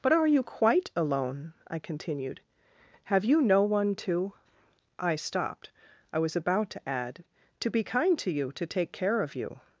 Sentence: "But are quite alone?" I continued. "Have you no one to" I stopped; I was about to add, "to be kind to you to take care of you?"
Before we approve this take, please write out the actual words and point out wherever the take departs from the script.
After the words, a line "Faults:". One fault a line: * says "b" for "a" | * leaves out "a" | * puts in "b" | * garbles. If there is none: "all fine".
"But are you quite alone?" I continued. "Have you no one to" I stopped; I was about to add, "to be kind to you to take care of you?"
Faults:
* puts in "you"